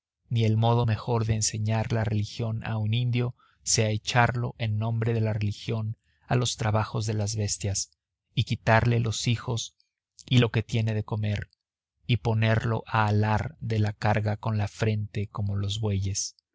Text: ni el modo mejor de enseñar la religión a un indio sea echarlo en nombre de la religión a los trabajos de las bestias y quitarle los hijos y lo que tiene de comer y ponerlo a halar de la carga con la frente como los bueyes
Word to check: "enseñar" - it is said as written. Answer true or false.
true